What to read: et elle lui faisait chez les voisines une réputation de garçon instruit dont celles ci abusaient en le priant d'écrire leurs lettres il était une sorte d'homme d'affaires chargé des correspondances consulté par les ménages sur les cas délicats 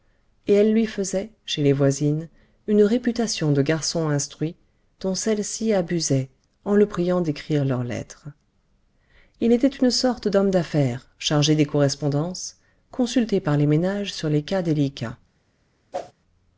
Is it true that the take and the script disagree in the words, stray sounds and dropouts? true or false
true